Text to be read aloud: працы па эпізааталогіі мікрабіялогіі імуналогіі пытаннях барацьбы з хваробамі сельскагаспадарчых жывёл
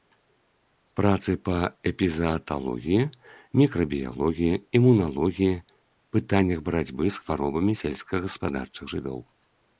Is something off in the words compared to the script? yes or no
no